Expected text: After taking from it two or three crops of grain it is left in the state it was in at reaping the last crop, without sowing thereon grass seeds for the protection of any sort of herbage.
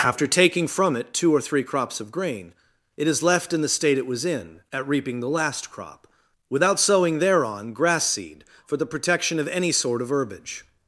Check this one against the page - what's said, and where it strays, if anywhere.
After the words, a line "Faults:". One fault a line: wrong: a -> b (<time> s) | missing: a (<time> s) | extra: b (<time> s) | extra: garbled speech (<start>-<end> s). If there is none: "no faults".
After taking from it two or three crops of grain it is left in the state it was in at reaping the last crop, without sowing thereon grass seed for the protection of any sort of herbage.
Faults:
wrong: seeds -> seed (8.0 s)